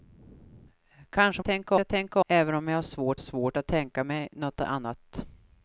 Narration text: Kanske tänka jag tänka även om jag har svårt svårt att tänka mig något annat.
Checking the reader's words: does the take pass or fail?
pass